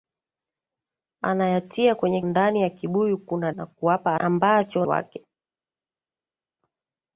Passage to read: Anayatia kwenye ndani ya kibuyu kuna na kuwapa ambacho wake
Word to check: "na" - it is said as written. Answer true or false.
true